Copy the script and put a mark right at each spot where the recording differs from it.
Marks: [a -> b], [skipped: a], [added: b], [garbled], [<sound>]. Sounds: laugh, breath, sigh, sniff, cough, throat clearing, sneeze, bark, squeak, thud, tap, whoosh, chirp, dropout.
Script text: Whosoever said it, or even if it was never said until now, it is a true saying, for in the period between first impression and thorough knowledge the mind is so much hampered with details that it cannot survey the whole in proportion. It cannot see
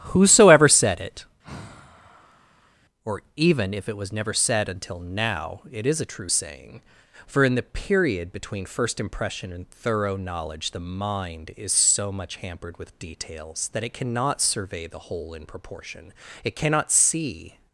Whosoever said it, [sigh] or even if it was never said until now, it is a true saying, for in the period between first impression and thorough knowledge the mind is so much hampered with details that it cannot survey the whole in proportion. It cannot see